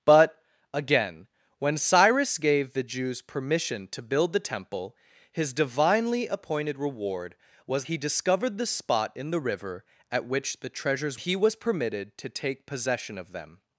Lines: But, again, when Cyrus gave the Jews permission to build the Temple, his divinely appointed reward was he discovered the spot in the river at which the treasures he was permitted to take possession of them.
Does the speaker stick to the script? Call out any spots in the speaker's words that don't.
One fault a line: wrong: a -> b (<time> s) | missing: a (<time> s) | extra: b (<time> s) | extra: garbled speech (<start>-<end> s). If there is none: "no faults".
no faults